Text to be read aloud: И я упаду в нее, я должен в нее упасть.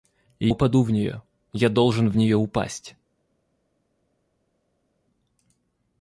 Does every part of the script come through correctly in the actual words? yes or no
no